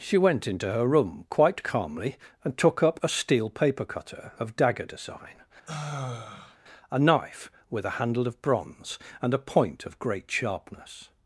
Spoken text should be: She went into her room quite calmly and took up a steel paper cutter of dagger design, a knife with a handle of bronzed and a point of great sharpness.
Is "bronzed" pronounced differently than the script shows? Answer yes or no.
yes